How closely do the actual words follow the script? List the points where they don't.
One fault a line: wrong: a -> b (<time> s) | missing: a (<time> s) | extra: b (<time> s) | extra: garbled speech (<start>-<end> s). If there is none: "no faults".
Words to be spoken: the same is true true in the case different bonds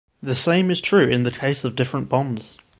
missing: true (1.1 s)
extra: of (1.6 s)